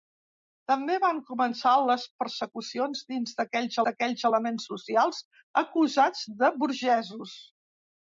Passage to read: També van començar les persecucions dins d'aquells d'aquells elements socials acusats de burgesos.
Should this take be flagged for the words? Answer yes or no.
no